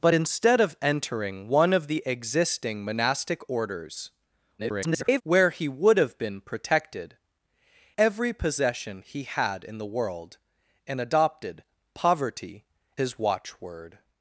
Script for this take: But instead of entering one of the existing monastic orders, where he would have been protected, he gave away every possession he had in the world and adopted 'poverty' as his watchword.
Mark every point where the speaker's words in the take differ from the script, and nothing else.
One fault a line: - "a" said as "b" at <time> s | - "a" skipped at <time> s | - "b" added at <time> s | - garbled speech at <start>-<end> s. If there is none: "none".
- garbled speech at 4.6-5.2 s
- "he gave away" skipped at 7.2 s
- "as" skipped at 12.6 s